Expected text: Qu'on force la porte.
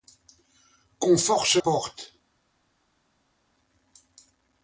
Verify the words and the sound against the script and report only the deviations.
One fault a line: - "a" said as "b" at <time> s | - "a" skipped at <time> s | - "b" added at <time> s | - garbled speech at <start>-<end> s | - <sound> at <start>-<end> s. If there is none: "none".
- "la" skipped at 1.6 s